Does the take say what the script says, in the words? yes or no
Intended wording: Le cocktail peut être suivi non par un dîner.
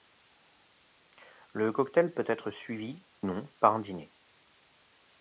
yes